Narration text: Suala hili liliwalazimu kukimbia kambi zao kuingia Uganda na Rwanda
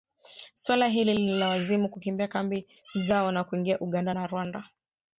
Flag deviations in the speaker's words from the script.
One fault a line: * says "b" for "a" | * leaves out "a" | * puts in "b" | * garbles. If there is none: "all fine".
* puts in "na"